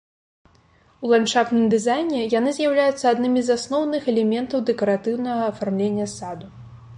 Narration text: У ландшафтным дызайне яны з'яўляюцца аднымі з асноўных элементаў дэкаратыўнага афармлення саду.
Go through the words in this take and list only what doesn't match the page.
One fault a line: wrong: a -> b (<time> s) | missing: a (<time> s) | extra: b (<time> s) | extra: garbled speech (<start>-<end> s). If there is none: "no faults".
no faults